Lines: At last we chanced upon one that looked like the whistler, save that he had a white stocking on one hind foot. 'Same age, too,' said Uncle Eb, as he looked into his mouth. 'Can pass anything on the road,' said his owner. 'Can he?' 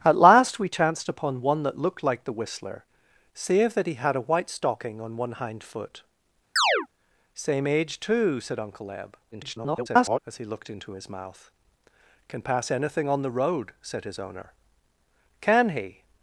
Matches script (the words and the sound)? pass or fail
fail